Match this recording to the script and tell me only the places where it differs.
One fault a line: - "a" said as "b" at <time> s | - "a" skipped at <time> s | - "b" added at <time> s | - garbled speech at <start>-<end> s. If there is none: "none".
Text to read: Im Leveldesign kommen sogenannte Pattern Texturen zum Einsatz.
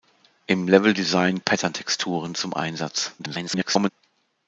- "kommen sogenannte" skipped at 1.4 s
- garbled speech at 3.2-3.9 s